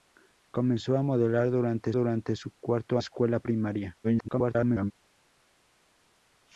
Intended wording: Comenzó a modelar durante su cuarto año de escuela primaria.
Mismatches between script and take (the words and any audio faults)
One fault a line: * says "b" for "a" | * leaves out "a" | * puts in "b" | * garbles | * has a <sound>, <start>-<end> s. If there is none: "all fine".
* puts in "durante"
* leaves out "año de"
* garbles